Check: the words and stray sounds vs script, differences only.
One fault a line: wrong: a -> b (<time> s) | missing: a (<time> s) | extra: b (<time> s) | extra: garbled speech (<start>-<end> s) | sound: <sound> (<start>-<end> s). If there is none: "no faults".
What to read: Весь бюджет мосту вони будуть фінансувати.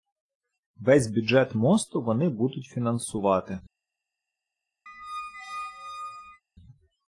sound: squeak (4.9-6.4 s)